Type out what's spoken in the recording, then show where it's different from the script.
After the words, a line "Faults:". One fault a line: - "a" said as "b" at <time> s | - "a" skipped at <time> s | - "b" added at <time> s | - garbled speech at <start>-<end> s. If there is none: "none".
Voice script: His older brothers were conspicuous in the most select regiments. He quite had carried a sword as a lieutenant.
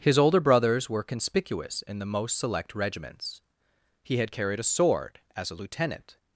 His older brothers were conspicuous in the most select regiments. He had carried a sword as a lieutenant.
Faults:
- "quite" skipped at 4.2 s